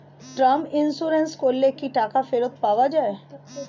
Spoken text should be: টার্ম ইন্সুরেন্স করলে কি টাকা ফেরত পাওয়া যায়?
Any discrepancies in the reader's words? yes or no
no